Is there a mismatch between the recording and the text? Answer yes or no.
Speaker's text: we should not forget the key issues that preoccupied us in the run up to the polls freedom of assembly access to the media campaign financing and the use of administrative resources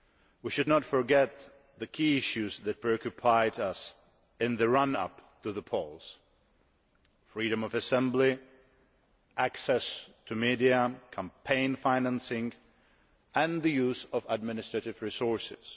no